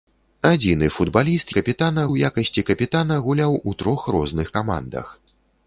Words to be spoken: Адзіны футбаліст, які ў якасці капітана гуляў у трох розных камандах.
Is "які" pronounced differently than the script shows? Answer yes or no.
yes